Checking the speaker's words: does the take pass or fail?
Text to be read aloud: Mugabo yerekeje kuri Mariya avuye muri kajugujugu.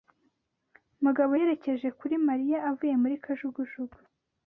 pass